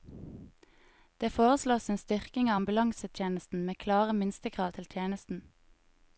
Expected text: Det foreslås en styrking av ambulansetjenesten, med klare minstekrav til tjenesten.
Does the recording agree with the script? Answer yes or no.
yes